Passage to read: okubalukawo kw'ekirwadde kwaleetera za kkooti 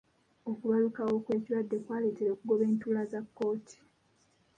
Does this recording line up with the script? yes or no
no